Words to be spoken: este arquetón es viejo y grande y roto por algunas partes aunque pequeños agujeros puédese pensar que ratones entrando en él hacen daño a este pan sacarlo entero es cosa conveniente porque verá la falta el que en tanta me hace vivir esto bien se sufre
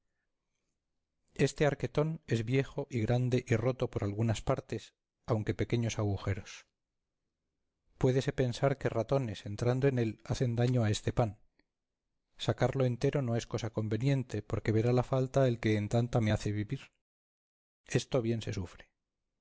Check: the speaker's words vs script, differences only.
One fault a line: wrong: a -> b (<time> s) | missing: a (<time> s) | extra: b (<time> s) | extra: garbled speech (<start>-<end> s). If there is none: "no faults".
extra: no (13.2 s)